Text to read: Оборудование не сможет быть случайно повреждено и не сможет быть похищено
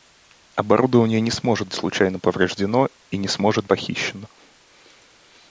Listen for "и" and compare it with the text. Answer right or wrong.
right